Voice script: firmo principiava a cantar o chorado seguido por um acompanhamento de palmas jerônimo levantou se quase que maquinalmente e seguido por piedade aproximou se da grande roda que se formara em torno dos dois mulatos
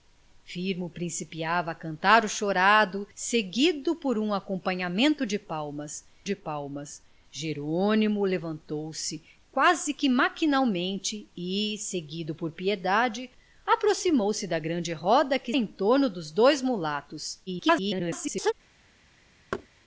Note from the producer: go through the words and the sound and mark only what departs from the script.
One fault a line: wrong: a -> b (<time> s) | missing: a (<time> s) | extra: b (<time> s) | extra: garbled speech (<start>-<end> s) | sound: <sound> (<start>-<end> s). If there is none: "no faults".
extra: de palmas (6.2 s)
missing: se formara (15.5 s)
extra: garbled speech (17.5-18.5 s)
sound: thud (19.5-19.7 s)